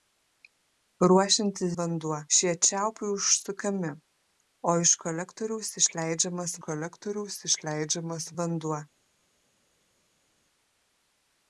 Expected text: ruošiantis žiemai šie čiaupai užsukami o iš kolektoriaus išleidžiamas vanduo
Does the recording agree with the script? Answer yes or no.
no